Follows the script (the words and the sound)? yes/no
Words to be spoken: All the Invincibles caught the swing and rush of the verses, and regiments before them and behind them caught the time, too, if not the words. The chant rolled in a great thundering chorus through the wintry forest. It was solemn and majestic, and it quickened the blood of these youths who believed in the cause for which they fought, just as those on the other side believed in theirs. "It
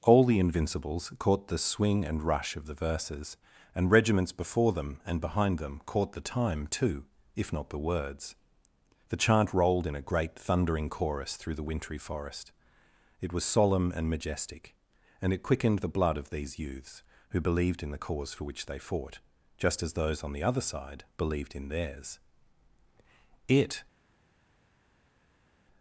yes